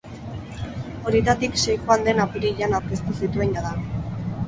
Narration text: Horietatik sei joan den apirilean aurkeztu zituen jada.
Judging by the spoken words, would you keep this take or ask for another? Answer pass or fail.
pass